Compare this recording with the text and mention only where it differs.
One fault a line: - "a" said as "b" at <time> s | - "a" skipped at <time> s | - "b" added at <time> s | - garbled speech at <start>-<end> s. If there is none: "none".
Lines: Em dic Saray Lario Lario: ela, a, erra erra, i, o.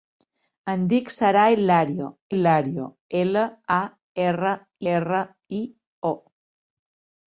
none